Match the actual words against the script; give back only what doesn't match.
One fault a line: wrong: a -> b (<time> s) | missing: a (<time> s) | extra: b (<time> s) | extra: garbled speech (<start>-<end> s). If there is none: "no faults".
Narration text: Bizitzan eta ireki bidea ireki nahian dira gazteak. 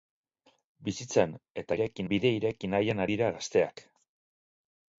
no faults